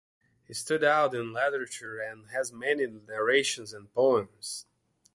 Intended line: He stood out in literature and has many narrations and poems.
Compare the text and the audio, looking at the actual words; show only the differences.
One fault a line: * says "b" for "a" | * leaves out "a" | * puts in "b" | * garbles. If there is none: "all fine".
all fine